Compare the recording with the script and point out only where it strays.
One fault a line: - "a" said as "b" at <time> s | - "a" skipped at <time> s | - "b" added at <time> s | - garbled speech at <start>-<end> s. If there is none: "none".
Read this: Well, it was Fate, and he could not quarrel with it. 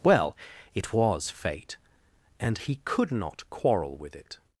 none